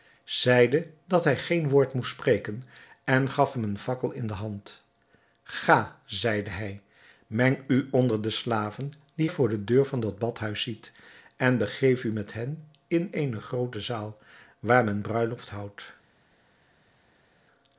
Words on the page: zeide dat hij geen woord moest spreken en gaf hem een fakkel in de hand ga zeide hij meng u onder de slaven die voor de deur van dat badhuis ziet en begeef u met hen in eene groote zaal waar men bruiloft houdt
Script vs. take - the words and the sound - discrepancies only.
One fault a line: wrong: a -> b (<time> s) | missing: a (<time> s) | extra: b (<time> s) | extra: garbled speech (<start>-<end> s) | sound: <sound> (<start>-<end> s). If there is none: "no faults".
no faults